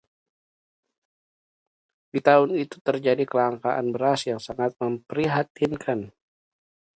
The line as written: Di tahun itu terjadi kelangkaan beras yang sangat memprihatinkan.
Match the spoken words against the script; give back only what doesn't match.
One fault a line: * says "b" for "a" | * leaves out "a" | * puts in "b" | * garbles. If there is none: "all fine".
all fine